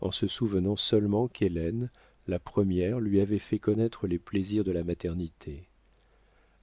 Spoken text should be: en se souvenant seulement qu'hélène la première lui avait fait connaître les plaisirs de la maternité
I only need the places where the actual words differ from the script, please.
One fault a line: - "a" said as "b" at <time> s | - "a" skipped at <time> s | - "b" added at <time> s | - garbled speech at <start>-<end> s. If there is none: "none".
none